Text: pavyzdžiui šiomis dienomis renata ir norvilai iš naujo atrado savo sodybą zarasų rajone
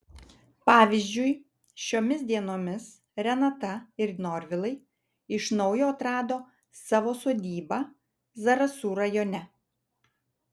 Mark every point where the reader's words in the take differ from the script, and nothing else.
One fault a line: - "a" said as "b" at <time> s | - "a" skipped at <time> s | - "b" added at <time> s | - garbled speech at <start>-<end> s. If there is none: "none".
none